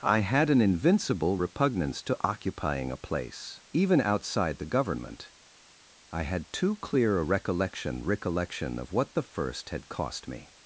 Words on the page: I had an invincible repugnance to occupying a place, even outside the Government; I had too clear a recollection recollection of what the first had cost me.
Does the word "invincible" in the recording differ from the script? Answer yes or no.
no